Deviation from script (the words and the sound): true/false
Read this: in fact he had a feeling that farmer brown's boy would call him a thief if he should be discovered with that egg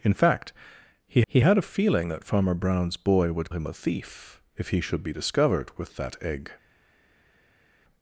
true